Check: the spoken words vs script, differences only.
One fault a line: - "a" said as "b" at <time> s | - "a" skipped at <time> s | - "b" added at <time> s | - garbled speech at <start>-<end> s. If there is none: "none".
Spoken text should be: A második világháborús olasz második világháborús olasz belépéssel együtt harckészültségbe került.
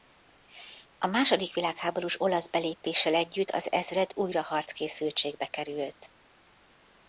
- "második világháborús olasz belépéssel együtt" said as "belépéssel együtt az ezred újra" at 2.5 s